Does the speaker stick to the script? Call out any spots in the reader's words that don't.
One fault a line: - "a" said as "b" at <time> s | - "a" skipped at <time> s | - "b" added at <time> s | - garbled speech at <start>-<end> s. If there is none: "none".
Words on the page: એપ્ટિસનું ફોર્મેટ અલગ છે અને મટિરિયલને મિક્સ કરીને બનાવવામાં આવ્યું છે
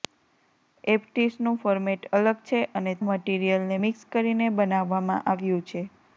none